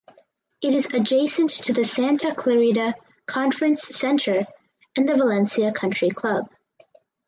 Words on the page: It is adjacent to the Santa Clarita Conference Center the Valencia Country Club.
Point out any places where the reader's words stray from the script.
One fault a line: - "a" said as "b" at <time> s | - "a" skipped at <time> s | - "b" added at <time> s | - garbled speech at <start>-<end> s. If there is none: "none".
- "and" added at 4.9 s